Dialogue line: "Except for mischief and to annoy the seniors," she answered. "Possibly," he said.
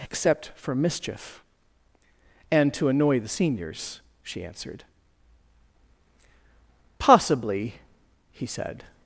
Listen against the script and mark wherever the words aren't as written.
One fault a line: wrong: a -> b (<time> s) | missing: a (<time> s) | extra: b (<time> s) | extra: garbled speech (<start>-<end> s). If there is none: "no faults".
no faults